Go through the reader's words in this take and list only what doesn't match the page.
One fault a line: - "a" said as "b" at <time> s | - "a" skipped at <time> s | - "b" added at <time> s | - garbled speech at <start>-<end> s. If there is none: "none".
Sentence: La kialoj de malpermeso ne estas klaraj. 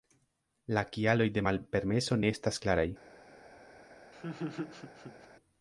none